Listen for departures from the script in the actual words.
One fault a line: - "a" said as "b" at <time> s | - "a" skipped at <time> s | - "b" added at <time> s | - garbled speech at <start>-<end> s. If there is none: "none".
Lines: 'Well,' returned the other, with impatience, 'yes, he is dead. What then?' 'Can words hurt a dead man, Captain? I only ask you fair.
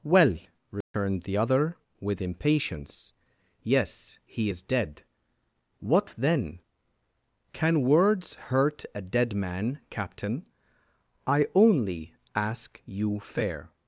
none